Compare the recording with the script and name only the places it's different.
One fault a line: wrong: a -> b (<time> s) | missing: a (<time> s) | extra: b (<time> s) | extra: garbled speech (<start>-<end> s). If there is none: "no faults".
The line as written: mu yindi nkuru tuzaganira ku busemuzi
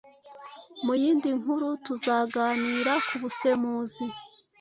no faults